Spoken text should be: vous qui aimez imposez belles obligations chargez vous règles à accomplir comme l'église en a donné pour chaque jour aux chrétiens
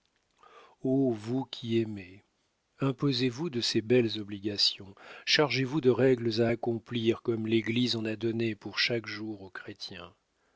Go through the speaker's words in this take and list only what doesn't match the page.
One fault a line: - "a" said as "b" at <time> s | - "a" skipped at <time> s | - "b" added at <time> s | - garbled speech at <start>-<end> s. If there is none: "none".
- "vous de ces" added at 3.3 s
- "de" added at 5.8 s